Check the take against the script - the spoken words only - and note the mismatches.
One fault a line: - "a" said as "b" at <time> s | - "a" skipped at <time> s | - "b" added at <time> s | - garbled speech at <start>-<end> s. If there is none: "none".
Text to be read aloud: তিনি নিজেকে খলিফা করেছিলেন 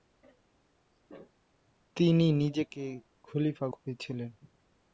none